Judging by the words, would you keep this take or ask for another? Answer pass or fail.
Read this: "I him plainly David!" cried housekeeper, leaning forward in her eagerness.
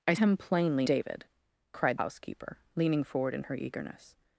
pass